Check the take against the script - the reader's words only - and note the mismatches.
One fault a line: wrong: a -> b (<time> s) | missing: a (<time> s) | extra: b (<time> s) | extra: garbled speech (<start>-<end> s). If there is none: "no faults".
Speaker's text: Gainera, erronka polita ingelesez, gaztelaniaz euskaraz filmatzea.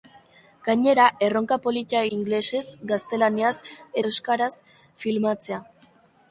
no faults